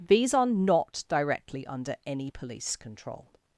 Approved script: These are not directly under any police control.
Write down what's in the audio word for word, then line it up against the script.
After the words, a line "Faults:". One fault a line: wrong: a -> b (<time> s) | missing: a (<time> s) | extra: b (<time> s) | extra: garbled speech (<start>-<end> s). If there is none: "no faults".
These are not directly under any police control.
Faults:
no faults